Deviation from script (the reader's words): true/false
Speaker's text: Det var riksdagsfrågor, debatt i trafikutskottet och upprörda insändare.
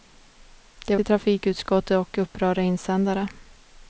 true